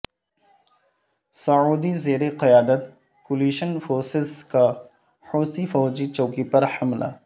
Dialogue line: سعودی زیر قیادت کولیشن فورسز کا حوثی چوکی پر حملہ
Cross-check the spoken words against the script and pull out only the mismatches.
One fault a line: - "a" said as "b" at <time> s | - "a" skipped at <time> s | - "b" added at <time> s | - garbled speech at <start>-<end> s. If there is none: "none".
- "فوجی" added at 5.6 s